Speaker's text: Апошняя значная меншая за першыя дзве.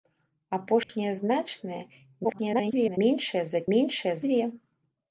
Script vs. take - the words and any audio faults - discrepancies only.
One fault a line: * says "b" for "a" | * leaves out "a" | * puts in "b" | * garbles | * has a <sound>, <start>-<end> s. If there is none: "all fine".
* has a dropout, 0.8-0.9 s
* garbles
* says "меншая" for "першыя"